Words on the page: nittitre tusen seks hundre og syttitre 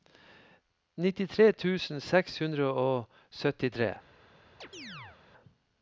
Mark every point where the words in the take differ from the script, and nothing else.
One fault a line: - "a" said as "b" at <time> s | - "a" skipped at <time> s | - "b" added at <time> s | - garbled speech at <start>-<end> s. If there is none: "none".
none